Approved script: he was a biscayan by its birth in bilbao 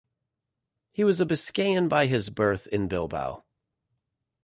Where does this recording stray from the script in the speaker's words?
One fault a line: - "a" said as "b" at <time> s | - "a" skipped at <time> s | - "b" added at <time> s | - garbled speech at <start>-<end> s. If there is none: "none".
- "its" said as "his" at 2.1 s